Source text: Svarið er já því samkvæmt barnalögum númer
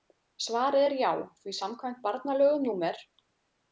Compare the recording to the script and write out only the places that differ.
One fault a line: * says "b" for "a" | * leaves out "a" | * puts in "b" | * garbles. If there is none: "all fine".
all fine